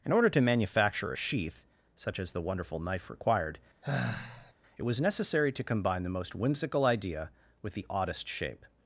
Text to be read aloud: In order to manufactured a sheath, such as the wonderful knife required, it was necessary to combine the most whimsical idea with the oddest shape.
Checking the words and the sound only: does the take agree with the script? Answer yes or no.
no